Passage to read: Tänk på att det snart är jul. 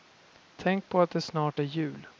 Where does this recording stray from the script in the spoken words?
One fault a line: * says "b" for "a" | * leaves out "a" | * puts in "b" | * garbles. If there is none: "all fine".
all fine